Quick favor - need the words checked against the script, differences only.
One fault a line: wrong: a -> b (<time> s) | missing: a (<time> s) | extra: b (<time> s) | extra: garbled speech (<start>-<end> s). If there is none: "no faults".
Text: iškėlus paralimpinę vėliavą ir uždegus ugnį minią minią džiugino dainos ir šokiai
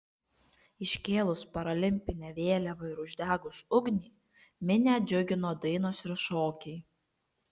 missing: minią (4.9 s)